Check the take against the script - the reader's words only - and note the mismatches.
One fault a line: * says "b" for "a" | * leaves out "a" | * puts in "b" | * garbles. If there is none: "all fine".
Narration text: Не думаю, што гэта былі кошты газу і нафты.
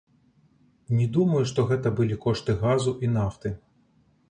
all fine